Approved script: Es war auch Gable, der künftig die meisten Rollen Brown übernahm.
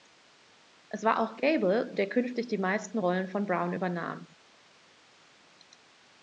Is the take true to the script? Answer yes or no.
no